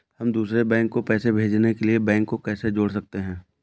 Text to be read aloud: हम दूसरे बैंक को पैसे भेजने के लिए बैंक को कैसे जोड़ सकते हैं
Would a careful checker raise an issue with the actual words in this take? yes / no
no